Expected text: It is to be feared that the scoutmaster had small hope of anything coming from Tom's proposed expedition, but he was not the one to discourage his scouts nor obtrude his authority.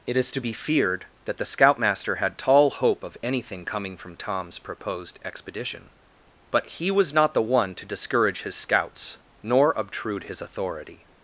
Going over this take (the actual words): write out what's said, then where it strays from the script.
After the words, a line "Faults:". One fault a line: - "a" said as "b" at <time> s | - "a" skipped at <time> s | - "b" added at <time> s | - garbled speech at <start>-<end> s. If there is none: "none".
It is to be feared that the scoutmaster had tall hope of anything coming from Tom's proposed expedition, but he was not the one to discourage his scouts nor obtrude his authority.
Faults:
- "small" said as "tall" at 2.4 s